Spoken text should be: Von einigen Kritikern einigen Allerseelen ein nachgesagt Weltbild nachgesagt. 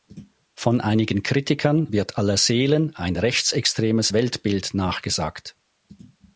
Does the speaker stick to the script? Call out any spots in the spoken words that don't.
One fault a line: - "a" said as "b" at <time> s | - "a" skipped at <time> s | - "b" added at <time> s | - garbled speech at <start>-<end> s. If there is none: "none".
- "einigen" said as "wird" at 1.9 s
- "nachgesagt" said as "rechtsextremes" at 3.2 s